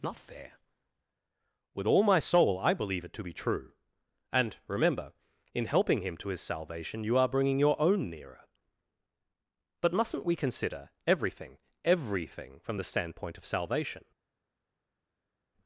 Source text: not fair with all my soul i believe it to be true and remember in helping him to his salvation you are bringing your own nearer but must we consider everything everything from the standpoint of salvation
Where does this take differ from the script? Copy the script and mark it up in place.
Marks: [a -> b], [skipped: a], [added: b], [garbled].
not fair with all my soul i believe it to be true and remember in helping him to his salvation you are bringing your own nearer but [must -> mustn't] we consider everything everything from the standpoint of salvation